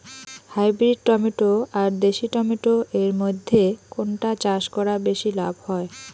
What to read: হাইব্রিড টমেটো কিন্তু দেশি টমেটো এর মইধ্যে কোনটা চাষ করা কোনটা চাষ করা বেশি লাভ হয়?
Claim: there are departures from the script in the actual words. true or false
true